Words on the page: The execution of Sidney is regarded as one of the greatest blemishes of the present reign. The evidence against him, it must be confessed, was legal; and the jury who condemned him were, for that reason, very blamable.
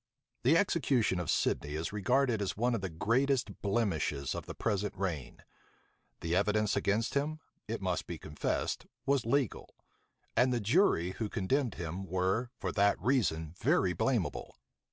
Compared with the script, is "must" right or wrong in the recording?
right